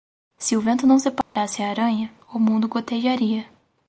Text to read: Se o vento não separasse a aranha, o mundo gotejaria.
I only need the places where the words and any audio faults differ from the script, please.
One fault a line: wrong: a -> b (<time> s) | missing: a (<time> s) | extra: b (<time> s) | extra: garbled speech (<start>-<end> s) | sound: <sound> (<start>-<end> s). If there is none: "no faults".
sound: dropout (1.2-1.4 s)